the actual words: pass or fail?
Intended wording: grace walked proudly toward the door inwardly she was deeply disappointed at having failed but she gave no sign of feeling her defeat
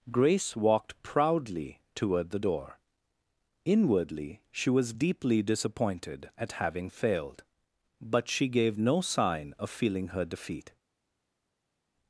pass